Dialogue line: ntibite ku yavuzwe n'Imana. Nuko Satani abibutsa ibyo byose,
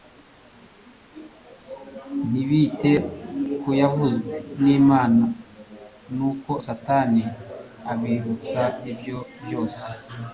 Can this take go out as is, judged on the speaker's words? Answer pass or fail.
pass